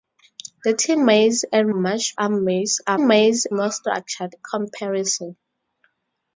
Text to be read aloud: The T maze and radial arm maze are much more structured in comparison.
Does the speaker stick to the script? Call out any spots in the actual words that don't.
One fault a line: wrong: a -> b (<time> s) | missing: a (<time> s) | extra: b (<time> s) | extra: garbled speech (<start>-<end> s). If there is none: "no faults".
wrong: radial -> much (1.7 s)
wrong: much -> maze (3.0 s)
missing: in (4.4 s)